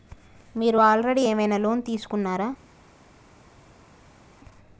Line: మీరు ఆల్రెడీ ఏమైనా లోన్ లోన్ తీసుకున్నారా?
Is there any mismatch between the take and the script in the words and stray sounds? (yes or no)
yes